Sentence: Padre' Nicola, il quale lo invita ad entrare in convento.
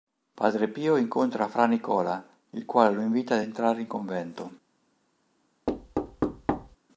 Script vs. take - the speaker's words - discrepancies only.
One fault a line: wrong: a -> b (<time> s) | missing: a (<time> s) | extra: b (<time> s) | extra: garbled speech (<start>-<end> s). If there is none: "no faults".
extra: Pio incontra Fra (0.7 s)